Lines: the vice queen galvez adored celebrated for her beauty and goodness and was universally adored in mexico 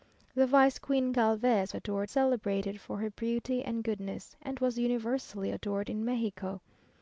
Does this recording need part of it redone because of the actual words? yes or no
no